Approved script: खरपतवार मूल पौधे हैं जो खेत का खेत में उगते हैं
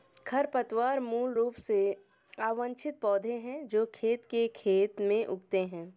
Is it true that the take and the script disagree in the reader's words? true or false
true